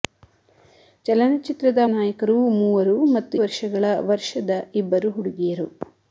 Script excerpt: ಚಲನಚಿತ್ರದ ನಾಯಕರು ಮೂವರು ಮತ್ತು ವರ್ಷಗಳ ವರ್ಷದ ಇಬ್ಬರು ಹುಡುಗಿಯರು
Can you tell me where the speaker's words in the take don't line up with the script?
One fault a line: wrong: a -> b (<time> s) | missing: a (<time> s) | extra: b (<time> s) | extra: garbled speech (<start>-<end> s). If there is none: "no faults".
no faults